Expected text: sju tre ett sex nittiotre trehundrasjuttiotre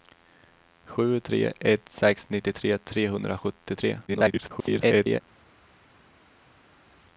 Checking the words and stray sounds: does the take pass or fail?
fail